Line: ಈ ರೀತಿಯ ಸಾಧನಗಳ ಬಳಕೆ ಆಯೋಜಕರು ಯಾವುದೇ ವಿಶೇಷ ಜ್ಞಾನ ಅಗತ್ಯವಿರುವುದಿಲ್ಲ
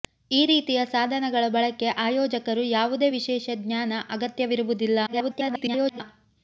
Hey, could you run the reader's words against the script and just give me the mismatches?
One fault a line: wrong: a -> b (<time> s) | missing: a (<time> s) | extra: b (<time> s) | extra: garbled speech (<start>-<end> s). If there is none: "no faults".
extra: garbled speech (5.1-6.0 s)